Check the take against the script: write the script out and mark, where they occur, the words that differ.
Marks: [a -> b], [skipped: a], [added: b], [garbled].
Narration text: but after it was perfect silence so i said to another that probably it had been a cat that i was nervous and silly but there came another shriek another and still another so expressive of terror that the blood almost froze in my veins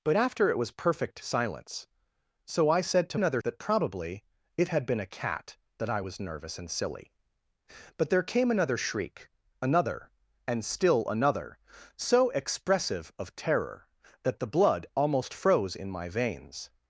but after it was perfect silence so i said to another that probably it had been a cat that i was nervous and silly but there came another shriek another and still another so expressive of terror that the blood almost froze in my veins